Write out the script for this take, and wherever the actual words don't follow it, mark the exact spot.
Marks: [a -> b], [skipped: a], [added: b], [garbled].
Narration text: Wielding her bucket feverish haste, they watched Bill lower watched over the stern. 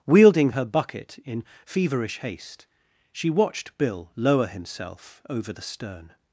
Wielding her bucket [added: in] feverish haste, [they -> she] watched Bill lower [watched -> himself] over the stern.